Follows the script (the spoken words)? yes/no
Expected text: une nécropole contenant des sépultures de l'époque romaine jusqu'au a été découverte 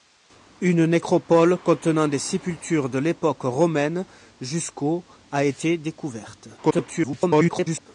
no